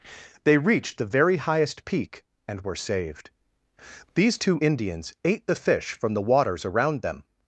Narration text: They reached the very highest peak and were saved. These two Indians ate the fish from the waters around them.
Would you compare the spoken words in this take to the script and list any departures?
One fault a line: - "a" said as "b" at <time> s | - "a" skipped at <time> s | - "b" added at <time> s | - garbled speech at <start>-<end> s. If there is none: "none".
none